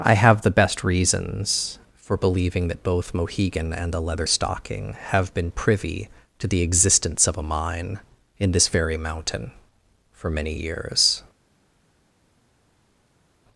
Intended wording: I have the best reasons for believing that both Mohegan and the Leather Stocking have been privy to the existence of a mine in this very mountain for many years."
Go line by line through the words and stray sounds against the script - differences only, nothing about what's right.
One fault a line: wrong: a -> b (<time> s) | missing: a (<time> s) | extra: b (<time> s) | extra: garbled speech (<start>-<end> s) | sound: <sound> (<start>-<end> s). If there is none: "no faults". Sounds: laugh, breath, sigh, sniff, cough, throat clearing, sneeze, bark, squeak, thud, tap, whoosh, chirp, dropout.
no faults